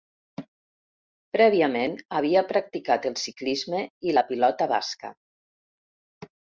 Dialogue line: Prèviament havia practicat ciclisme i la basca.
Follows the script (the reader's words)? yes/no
no